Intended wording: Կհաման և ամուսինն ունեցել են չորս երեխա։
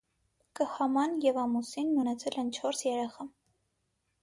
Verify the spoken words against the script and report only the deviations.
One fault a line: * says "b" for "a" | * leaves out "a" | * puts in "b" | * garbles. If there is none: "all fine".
all fine